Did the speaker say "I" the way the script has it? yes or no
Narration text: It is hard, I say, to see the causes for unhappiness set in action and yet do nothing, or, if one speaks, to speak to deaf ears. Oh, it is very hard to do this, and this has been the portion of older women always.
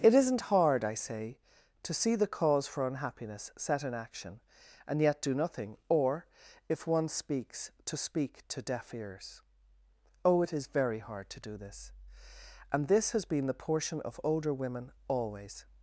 yes